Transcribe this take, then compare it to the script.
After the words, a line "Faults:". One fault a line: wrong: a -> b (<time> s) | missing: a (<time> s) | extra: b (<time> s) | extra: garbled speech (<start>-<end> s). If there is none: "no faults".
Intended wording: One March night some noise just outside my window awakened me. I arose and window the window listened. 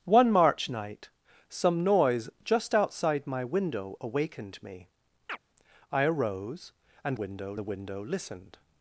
One March night some noise just outside my window awakened me. I arose and window the window listened.
Faults:
no faults